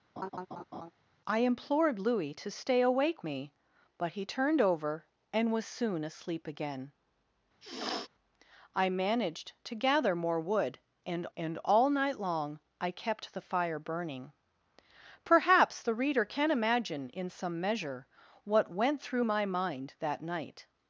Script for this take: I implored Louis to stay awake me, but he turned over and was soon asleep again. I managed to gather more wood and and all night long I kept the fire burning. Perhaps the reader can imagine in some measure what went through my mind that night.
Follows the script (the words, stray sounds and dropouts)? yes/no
no